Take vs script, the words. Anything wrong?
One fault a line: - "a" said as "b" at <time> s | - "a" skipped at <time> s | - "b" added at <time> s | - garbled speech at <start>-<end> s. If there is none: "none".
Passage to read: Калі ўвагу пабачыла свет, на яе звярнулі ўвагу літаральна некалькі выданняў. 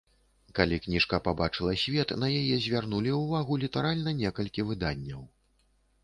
- "ўвагу" said as "кніжка" at 0.8 s